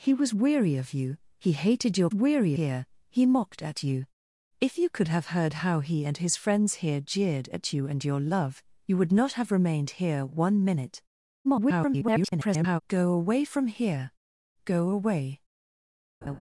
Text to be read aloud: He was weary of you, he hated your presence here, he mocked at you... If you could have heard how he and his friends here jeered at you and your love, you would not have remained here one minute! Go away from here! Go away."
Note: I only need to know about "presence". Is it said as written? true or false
false